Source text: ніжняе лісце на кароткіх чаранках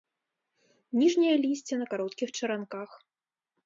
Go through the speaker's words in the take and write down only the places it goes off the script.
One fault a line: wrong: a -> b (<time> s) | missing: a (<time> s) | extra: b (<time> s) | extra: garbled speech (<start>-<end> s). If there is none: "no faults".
no faults